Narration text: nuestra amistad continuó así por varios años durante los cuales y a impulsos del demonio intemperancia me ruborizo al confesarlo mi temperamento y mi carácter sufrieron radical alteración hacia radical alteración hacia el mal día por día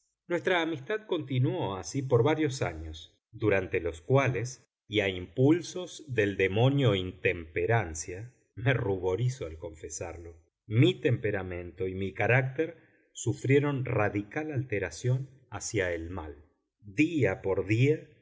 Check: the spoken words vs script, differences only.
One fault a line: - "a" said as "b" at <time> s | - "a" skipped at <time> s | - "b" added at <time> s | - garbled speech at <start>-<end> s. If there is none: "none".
- "radical alteración hacia" skipped at 15.9 s